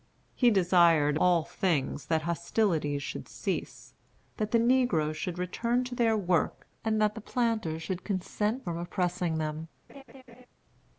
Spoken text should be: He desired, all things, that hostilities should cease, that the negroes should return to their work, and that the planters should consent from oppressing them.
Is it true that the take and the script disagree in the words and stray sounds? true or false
true